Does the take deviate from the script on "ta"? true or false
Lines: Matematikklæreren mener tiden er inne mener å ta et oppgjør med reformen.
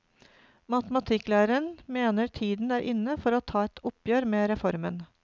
false